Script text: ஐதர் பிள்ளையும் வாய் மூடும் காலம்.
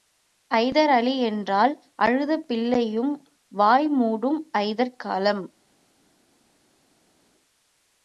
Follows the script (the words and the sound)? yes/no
no